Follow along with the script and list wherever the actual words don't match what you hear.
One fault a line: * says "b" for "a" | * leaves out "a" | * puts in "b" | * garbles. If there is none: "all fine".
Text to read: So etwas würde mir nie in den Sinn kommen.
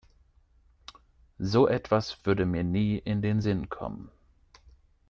all fine